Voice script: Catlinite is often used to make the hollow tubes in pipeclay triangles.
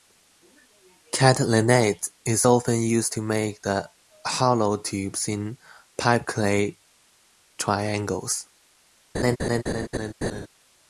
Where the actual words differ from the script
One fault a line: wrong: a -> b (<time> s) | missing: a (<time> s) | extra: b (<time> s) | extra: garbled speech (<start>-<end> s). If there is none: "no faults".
no faults